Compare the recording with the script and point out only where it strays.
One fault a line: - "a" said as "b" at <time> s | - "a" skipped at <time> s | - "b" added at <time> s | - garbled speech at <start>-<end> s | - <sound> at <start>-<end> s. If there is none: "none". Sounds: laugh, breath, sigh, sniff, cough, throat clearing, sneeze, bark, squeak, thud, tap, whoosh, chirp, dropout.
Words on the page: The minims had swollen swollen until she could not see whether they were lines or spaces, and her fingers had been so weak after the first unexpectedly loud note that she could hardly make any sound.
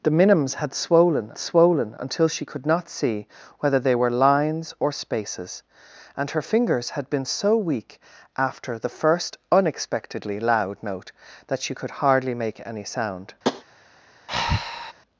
- tap at 13.4-13.6 s
- breath at 14.3-14.9 s